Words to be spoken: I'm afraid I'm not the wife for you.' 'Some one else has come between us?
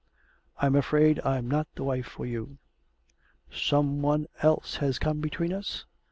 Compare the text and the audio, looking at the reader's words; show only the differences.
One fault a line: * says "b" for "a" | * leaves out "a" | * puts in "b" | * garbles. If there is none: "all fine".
all fine